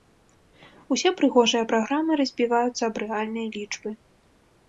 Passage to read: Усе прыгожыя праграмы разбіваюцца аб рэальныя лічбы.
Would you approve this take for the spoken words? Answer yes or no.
yes